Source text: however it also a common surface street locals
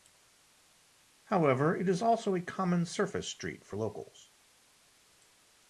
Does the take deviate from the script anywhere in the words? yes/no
yes